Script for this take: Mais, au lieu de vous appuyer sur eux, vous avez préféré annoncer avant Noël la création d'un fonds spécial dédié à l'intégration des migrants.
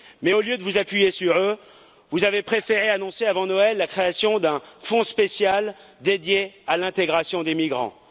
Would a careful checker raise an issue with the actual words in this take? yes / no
no